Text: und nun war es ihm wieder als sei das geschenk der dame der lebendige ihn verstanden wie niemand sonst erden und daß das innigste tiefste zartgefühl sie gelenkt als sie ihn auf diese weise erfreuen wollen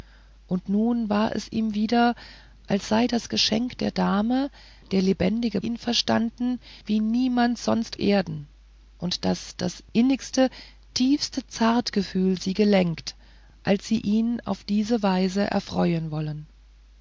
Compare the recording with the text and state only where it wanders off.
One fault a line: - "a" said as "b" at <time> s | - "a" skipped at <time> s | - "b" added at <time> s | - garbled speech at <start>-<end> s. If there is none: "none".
none